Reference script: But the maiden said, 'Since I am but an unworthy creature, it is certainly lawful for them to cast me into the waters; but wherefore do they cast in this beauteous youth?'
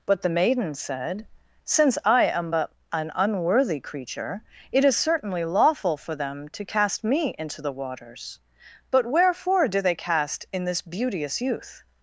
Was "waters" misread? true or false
false